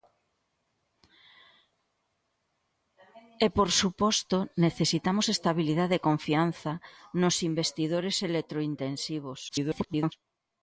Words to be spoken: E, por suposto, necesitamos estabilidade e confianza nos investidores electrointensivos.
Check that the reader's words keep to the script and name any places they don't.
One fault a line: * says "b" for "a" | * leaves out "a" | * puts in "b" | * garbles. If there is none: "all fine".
* garbles